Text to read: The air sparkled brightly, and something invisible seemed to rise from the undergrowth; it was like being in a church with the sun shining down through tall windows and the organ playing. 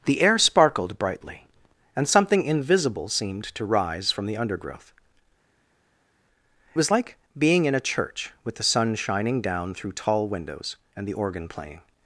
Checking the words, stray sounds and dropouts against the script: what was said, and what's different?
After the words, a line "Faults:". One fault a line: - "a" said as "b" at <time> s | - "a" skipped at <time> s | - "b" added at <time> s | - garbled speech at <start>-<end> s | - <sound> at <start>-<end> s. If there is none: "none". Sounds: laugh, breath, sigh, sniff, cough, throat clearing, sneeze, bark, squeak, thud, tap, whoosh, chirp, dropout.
The air sparkled brightly, and something invisible seemed to rise from the undergrowth; was like being in a church with the sun shining down through tall windows and the organ playing.
Faults:
- "it" skipped at 4.9 s